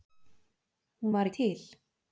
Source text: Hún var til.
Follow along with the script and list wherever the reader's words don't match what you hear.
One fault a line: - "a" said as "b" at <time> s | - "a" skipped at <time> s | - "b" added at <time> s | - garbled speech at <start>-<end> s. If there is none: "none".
none